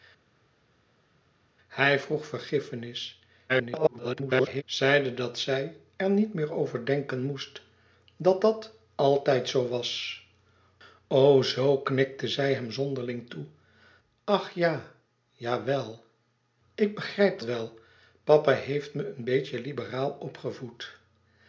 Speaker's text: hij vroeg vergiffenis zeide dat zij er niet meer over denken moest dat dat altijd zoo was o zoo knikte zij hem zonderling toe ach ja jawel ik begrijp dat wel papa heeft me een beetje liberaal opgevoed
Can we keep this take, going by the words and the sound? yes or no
no